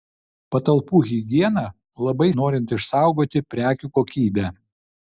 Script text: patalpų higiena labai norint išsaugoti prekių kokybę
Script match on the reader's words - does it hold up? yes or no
yes